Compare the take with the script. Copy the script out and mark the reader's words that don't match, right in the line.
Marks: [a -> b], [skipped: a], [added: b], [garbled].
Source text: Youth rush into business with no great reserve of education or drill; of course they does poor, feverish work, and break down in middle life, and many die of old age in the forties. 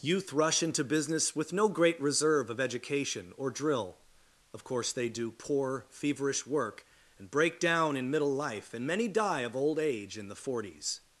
Youth rush into business with no great reserve of education or drill; of course they [does -> do] poor, feverish work, and break down in middle life, and many die of old age in the forties.